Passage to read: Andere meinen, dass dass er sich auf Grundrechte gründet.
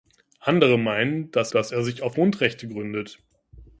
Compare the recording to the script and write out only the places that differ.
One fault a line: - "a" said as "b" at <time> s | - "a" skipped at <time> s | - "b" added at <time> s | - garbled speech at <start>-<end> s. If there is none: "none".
none